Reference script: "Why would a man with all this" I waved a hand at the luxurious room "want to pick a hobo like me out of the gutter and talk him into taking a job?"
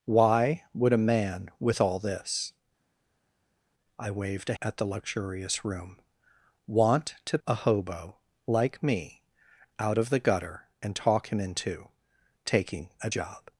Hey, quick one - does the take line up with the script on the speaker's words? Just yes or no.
no